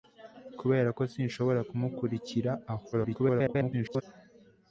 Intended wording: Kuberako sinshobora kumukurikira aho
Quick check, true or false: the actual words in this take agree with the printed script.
false